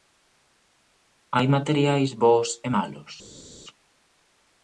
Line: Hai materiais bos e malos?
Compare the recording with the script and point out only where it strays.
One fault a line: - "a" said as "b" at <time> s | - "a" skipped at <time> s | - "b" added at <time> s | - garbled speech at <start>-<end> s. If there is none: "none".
none